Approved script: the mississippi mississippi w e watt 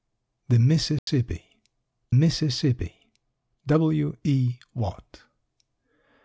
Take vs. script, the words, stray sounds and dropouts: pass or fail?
fail